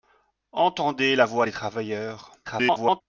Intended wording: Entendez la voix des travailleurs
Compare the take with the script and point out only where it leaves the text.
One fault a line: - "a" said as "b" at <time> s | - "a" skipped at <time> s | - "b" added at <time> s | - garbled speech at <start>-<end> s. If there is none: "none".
- garbled speech at 2.4-3.0 s